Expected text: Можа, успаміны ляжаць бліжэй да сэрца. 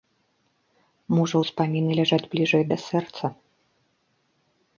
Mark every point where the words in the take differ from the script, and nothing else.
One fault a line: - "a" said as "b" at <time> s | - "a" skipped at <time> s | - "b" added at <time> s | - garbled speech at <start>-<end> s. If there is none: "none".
none